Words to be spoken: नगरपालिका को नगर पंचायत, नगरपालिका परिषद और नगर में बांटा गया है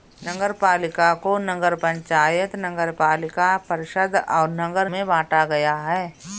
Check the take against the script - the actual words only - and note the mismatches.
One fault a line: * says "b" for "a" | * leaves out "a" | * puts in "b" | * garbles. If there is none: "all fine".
all fine